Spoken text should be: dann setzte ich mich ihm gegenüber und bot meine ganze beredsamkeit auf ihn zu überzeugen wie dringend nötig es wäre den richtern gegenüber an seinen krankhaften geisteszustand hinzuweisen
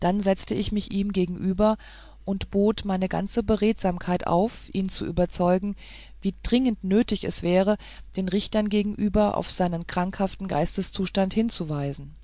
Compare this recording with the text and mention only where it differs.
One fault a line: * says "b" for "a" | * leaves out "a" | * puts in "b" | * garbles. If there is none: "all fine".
* says "auf" for "an"